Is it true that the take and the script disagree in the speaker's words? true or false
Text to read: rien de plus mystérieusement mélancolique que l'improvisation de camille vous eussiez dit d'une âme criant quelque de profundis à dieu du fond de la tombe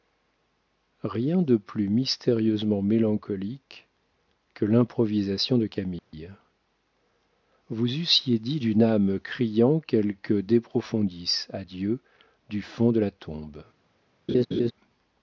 false